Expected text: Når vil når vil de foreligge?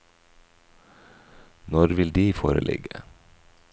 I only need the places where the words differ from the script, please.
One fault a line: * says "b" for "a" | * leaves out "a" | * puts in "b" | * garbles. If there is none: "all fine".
* leaves out "når vil"